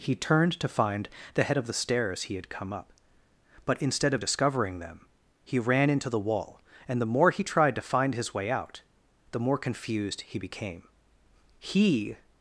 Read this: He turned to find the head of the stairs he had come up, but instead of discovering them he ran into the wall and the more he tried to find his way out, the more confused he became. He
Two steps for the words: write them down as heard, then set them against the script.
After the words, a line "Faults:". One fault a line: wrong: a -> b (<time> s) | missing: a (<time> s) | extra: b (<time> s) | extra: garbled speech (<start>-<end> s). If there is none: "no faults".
He turned to find the head of the stairs he had come up, but instead of discovering them he ran into the wall and the more he tried to find his way out, the more confused he became. He
Faults:
no faults